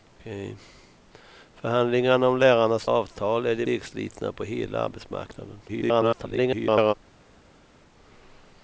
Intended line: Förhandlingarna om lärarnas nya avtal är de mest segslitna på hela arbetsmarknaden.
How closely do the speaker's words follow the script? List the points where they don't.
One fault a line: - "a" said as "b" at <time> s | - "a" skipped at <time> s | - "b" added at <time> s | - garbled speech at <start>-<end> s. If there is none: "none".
- "nya" skipped at 2.9 s
- "mest" skipped at 3.7 s
- garbled speech at 5.7-6.9 s